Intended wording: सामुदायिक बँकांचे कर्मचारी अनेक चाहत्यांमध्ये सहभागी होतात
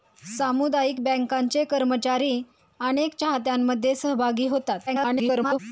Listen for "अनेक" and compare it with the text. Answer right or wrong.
right